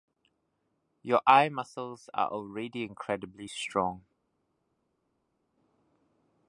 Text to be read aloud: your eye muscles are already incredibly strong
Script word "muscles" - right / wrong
right